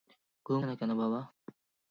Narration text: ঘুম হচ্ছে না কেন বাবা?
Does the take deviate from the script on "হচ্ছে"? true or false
true